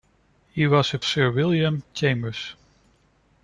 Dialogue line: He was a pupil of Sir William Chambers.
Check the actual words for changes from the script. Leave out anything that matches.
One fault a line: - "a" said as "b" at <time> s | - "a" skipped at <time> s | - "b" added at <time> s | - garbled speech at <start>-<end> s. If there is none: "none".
- "pupil of" skipped at 1.0 s